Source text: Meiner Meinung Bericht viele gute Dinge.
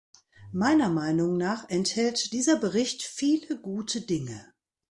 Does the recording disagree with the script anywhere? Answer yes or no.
yes